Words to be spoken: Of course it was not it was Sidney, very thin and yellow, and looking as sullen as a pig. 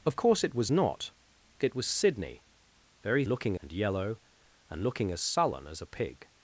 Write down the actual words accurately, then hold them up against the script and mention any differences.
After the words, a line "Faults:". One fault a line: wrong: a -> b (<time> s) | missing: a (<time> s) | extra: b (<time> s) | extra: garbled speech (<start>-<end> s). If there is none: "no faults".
Of course it was not it was Sidney, very looking and yellow, and looking as sullen as a pig.
Faults:
wrong: thin -> looking (3.3 s)